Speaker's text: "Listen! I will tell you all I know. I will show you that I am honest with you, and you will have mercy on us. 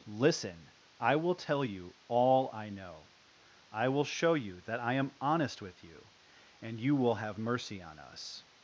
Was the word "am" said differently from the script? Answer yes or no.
no